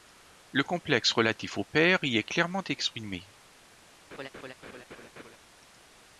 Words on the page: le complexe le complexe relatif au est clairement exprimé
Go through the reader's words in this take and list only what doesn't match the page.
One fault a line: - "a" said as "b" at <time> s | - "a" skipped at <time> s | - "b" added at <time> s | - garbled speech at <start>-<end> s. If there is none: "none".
- "le complexe relatif au" said as "relatif au père y" at 1.1 s